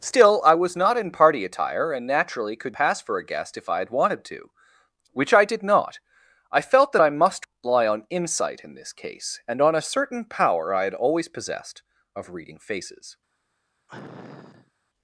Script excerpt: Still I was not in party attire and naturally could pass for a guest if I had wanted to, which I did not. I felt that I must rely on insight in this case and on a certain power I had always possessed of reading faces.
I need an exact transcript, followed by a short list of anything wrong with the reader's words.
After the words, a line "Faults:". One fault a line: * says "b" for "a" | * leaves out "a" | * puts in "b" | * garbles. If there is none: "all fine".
Still I was not in party attire and naturally could pass for a guest if I had wanted to, which I did not. I felt that I must rely on insight in this case and on a certain power I had always possessed of reading faces.
Faults:
all fine